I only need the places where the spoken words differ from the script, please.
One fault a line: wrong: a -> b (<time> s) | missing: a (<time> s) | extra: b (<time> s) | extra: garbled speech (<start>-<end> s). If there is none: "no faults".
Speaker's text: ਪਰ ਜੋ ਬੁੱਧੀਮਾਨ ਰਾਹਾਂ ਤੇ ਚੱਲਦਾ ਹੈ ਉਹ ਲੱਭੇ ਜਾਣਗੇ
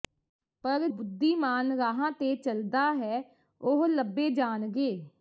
missing: ਜੋ (0.9 s)